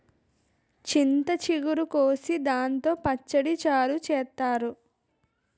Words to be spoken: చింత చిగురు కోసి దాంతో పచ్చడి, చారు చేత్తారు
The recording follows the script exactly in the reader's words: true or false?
true